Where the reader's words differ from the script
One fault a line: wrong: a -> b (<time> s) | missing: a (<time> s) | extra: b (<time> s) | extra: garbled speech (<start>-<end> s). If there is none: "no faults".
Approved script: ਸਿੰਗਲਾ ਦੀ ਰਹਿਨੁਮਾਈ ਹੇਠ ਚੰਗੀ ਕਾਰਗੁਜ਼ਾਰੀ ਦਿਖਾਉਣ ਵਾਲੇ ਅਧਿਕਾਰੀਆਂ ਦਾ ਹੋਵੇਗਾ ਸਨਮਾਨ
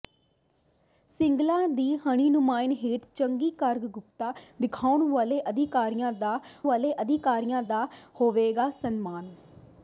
extra: ਵਾਲੇ ਅਧਿਕਾਰੀਆਂ ਦਾ (6.6 s)